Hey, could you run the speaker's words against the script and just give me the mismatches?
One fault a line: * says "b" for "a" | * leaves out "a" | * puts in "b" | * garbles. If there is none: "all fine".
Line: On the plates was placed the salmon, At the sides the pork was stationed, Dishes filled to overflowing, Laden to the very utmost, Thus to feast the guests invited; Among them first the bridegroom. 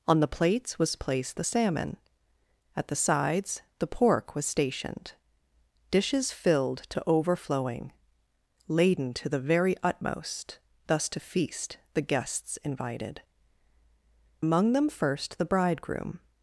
all fine